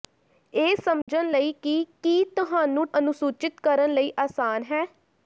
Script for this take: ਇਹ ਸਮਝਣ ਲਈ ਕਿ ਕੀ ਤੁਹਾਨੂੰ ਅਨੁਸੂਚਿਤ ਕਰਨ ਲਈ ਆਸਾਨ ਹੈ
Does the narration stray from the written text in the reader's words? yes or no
no